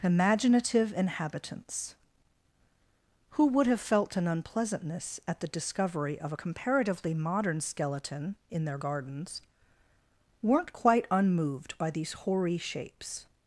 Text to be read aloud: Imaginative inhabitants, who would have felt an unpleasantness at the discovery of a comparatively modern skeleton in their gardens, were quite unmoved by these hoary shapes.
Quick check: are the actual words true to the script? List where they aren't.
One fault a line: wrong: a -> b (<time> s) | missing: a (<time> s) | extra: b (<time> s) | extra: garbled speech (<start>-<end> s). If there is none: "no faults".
wrong: were -> weren't (10.4 s)